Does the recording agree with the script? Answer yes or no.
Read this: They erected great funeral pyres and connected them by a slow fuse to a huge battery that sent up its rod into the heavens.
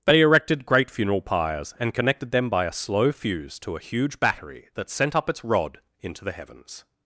yes